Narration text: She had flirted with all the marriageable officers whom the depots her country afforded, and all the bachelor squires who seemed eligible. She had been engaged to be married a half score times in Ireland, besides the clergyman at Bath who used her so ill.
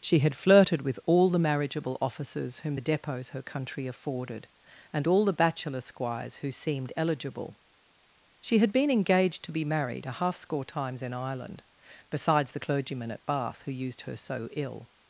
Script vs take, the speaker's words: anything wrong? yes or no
no